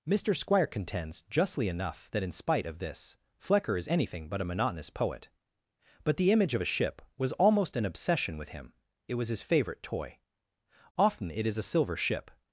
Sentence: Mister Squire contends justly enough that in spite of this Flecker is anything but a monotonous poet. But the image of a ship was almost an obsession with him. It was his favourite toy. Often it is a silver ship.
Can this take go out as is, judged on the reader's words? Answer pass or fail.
pass